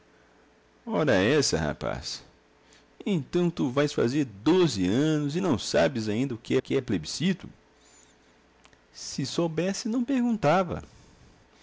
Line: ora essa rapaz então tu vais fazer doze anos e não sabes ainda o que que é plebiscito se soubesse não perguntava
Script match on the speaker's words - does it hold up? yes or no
yes